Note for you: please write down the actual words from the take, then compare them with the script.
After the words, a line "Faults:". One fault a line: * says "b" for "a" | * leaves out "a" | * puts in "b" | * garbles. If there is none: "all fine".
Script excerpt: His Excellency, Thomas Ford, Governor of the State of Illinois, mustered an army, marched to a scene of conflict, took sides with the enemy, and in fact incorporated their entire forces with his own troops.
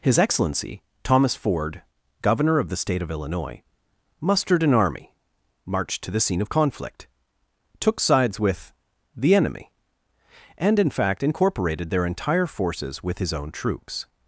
His Excellency, Thomas Ford, Governor of the State of Illinois, mustered an army, marched to the scene of conflict, took sides with the enemy, and in fact incorporated their entire forces with his own troops.
Faults:
* says "the" for "a"